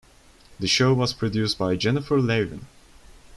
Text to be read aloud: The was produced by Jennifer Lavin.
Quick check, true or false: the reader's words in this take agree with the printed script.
false